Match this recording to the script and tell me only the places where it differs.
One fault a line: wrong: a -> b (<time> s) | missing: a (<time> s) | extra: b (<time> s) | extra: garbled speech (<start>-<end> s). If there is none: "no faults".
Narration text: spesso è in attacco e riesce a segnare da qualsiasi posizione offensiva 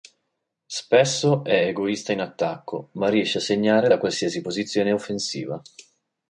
extra: egoista (1.7 s)
wrong: e -> ma (2.9 s)